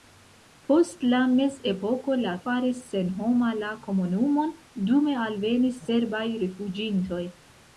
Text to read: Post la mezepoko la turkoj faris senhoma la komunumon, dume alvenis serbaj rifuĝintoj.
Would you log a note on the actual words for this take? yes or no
yes